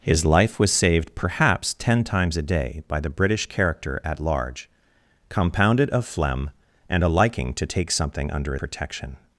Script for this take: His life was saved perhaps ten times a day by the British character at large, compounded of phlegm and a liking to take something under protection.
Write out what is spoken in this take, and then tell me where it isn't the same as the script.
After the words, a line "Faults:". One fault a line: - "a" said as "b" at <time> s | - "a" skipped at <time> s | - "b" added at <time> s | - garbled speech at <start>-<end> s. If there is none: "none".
His life was saved perhaps ten times a day by the British character at large, compounded of phlegm and a liking to take something under protection.
Faults:
none